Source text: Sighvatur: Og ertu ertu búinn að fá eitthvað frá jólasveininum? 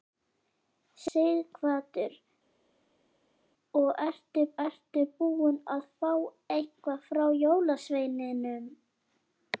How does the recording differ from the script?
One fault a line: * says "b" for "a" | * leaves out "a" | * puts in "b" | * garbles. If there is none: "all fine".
all fine